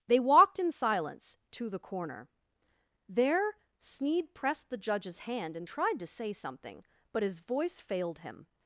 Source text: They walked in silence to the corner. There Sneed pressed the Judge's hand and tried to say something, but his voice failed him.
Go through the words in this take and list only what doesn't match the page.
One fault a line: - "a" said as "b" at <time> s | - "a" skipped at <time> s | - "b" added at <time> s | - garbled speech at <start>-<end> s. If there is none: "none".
none